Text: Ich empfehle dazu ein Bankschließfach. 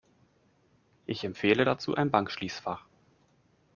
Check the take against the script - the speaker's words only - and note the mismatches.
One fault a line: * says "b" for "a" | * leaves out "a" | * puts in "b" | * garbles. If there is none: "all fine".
all fine